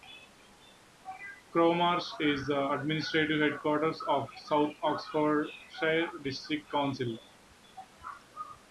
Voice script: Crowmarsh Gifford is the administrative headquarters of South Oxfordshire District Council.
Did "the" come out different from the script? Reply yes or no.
no